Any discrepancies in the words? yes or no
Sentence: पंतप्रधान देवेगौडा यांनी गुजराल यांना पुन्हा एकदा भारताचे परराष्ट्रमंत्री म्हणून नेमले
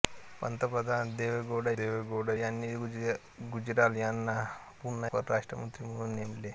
yes